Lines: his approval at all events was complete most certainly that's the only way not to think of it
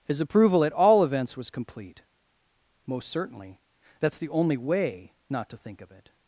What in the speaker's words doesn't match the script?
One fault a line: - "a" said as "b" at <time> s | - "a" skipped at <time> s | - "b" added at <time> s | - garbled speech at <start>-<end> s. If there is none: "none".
none